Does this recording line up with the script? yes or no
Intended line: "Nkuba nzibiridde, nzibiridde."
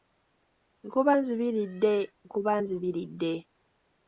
no